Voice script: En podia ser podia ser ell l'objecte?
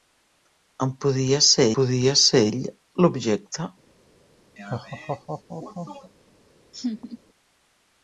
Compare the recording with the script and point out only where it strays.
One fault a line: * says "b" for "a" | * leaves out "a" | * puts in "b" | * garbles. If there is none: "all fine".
all fine